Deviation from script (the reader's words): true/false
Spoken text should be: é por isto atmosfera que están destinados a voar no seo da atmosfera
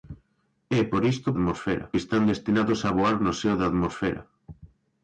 false